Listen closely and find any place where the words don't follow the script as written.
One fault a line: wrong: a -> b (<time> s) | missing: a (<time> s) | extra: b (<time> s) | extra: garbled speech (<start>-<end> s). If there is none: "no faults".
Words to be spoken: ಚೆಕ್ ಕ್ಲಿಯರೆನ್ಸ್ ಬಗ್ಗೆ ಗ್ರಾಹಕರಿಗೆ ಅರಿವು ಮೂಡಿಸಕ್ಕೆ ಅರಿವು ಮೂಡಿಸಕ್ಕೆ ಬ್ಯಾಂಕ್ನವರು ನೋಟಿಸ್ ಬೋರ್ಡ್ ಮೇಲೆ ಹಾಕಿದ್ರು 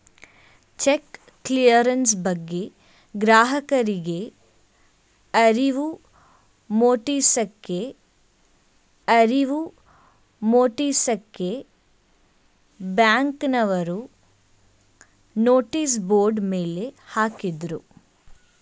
no faults